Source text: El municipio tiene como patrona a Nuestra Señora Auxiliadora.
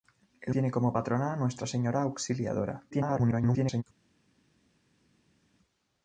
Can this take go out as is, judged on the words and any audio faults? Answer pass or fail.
fail